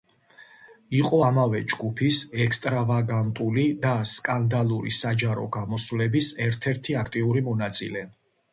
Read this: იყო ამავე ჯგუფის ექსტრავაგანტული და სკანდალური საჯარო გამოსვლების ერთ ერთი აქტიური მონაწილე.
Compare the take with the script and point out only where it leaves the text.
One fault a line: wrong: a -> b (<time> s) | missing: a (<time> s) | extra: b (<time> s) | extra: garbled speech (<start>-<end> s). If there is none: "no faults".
no faults